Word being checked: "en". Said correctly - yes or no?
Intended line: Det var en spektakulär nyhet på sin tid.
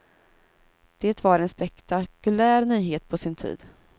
yes